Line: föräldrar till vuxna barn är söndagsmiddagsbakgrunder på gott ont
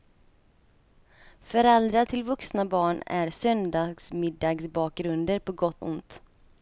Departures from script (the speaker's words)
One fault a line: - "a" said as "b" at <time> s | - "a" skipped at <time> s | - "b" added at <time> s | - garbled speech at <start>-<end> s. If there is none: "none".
none